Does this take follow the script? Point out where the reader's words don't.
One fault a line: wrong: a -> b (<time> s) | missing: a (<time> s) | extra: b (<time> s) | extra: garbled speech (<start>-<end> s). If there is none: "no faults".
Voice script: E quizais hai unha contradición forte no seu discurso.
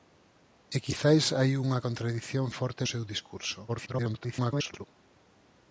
missing: no (2.8 s)
extra: garbled speech (3.7-4.9 s)